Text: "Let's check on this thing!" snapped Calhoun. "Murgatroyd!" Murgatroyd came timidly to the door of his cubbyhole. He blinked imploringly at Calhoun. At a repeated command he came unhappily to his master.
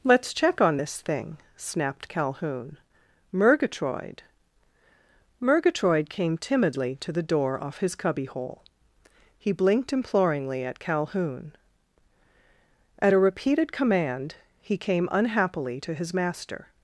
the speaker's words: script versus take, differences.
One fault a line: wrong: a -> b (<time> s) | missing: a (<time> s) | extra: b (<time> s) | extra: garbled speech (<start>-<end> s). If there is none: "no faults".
wrong: of -> off (7.6 s)